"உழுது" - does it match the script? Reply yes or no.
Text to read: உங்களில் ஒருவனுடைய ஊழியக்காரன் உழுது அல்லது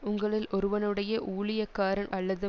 no